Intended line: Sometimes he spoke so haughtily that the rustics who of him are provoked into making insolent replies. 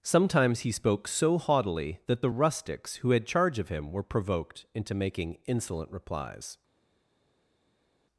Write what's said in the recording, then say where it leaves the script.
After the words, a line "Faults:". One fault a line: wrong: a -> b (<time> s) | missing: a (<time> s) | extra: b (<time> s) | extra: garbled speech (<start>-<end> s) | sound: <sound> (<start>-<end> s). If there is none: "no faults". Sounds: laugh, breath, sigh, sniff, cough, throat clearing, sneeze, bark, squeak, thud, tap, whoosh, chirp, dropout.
Sometimes he spoke so haughtily that the rustics who had charge of him were provoked into making insolent replies.
Faults:
extra: had charge (3.1 s)
wrong: are -> were (3.9 s)